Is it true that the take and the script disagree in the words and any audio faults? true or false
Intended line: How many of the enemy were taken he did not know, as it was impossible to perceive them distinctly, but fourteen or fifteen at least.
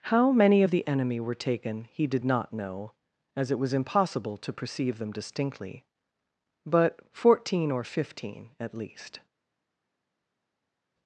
false